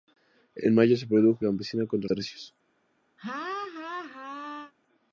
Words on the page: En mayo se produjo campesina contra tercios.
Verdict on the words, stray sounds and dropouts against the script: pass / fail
fail